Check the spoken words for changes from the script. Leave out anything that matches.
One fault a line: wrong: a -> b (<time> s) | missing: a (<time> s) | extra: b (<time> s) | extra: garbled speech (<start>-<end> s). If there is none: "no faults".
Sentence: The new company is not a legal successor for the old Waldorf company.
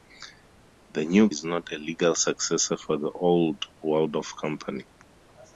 missing: company (1.3 s)